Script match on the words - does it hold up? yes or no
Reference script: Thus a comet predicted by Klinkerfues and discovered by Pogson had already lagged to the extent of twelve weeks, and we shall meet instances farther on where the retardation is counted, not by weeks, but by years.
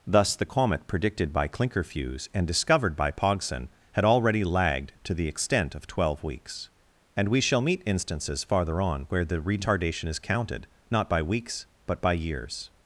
no